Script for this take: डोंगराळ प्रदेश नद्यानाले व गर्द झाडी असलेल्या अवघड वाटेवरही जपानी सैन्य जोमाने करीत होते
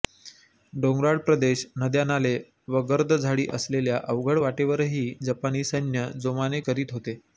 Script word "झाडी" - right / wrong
right